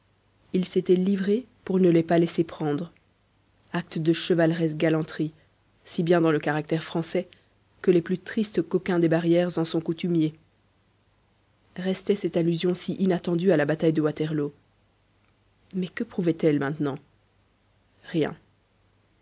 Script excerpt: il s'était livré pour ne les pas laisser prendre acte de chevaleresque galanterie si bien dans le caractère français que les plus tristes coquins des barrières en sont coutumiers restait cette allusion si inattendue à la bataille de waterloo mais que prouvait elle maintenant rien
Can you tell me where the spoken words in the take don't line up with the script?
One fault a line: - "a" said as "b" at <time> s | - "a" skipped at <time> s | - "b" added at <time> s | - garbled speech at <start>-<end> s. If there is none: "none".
none